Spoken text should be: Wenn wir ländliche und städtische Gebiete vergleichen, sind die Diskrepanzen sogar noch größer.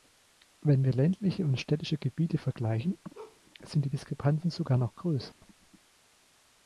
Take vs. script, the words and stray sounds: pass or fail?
fail